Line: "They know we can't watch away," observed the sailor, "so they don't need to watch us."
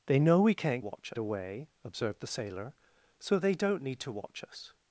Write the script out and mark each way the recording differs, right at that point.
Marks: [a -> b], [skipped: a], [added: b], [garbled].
"They know we can't watch away," observed the sailor, "so they don't need to watch us."